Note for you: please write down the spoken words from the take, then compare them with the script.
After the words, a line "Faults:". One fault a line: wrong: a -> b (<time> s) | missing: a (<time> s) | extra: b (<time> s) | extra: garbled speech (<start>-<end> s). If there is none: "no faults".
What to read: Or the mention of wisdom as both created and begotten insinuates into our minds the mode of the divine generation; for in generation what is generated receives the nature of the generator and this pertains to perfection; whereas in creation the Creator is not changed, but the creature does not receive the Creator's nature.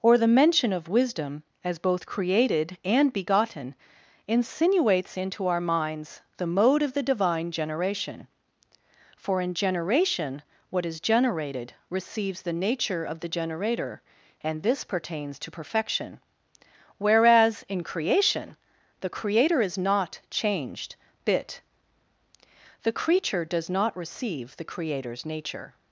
Or the mention of wisdom as both created and begotten insinuates into our minds the mode of the divine generation; for in generation what is generated receives the nature of the generator and this pertains to perfection; whereas in creation the Creator is not changed, bit the creature does not receive the Creator's nature.
Faults:
wrong: but -> bit (21.2 s)